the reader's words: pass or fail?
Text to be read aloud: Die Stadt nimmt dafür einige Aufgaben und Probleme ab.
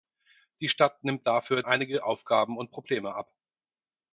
pass